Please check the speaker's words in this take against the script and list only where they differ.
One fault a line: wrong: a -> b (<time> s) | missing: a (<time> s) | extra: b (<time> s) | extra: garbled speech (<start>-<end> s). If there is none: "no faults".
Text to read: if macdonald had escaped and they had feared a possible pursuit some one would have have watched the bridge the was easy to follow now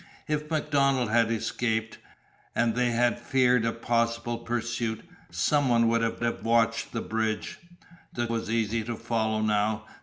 no faults